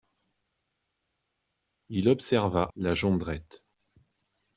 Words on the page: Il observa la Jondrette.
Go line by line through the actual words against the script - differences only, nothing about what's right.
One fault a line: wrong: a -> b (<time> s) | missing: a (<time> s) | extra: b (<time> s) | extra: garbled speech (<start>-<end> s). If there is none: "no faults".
no faults